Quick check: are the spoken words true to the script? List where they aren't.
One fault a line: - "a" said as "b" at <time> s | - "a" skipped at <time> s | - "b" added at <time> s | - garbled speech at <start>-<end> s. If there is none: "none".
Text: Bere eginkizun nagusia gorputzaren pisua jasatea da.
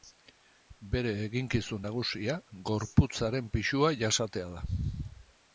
none